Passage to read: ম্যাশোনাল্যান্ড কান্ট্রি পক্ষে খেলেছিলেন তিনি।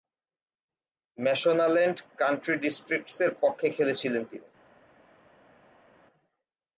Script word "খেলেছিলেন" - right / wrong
right